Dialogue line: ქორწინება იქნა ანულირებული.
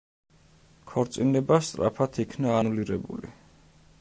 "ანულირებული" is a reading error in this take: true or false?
false